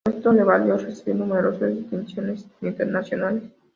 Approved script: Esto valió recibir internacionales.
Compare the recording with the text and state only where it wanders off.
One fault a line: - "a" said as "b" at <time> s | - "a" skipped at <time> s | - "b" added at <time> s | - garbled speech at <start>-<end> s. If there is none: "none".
- "le" added at 0.3 s
- "numerosas distinciones" added at 1.2 s